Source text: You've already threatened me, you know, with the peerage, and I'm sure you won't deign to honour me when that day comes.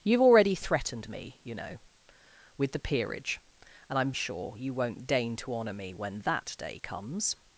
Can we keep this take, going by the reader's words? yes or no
yes